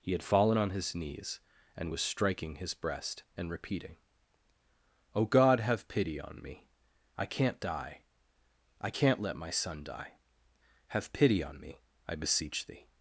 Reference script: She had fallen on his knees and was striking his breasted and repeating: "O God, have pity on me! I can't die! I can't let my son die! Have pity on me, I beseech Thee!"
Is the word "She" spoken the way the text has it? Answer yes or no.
no